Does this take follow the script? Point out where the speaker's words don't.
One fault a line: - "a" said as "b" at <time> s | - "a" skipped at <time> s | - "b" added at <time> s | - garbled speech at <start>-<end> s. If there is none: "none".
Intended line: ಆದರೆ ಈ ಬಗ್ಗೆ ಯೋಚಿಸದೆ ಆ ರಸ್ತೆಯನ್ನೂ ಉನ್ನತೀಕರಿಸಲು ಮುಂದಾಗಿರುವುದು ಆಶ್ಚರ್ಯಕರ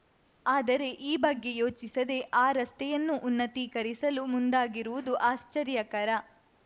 none